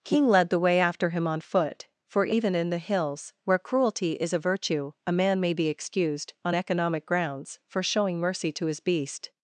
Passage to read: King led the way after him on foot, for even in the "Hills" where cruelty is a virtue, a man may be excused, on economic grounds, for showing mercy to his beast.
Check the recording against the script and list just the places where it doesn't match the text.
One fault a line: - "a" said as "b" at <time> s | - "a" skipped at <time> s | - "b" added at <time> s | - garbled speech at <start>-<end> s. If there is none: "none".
none